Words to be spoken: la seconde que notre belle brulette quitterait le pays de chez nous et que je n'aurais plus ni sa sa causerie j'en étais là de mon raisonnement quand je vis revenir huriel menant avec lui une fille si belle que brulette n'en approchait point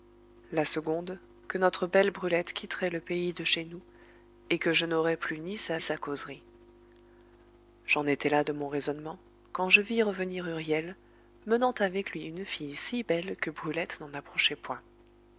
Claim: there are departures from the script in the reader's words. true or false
false